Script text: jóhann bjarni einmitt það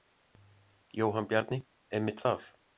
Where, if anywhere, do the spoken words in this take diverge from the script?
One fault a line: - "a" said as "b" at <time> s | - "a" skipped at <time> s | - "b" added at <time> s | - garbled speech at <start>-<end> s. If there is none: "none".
none